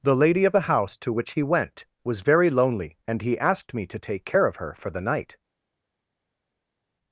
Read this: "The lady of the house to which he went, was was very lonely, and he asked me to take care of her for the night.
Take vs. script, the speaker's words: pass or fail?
fail